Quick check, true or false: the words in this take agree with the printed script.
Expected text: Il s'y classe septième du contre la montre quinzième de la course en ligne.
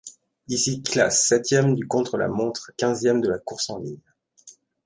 true